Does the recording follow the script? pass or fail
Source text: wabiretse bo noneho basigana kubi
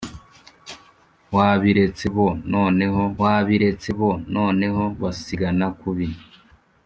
fail